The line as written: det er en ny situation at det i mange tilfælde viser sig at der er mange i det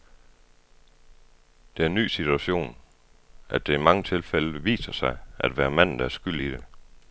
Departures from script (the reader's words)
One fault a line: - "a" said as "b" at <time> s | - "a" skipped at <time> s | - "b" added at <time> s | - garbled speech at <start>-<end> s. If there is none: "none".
- "være manden" added at 5.6 s
- "mange" said as "skyld" at 6.1 s